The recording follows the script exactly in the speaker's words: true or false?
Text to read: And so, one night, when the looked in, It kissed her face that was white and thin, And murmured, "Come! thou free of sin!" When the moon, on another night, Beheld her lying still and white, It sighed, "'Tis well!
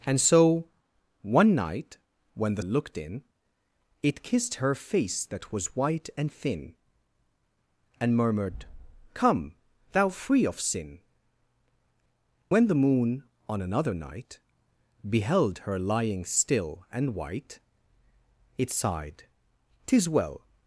true